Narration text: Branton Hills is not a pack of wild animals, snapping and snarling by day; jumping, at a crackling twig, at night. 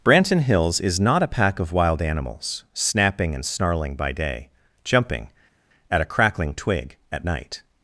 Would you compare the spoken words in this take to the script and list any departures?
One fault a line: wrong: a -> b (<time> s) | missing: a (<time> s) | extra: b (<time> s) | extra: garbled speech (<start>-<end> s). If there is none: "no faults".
no faults